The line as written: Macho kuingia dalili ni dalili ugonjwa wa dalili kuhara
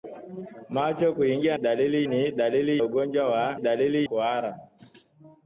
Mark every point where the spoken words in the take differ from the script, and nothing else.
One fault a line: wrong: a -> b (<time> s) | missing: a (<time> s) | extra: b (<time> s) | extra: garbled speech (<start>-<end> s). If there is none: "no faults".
no faults